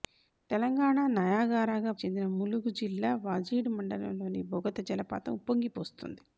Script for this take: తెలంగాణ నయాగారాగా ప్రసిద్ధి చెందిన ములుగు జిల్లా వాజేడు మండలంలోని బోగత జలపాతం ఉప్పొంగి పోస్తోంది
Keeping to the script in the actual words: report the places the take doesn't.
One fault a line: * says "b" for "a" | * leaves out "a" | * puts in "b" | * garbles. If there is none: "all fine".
* leaves out "ప్రసిద్ధి"